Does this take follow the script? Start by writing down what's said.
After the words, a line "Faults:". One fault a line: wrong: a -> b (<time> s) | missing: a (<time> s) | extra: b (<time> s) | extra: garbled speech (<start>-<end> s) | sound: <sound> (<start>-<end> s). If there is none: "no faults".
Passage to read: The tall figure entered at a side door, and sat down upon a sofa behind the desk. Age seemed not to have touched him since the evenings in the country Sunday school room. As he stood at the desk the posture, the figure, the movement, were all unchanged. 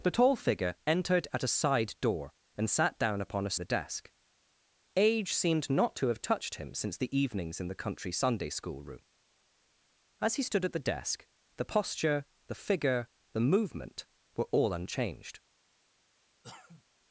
The tall figure entered at a side door, and sat down upon a the desk. Age seemed not to have touched him since the evenings in the country Sunday school room. As he stood at the desk the posture, the figure, the movement, were all unchanged.
Faults:
missing: sofa behind (3.5 s)
sound: cough (16.4-16.8 s)